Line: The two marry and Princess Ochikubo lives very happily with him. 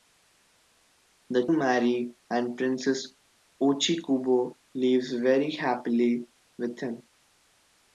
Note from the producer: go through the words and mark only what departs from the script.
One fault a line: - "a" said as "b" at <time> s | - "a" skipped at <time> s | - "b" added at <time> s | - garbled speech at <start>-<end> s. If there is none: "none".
- "two" skipped at 1.5 s